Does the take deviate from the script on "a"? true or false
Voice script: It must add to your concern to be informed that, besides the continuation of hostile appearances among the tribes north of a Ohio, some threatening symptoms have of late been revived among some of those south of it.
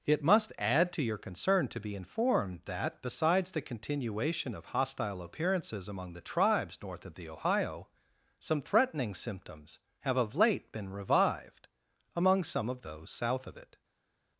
true